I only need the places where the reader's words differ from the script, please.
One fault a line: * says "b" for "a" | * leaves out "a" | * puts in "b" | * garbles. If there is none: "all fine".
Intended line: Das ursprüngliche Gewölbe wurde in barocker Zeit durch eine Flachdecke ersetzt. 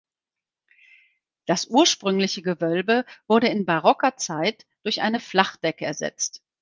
all fine